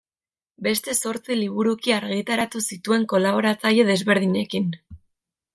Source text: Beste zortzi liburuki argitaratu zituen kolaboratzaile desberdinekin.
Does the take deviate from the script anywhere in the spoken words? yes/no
no